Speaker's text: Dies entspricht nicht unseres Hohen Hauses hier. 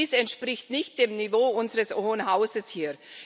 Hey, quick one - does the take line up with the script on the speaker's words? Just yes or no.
no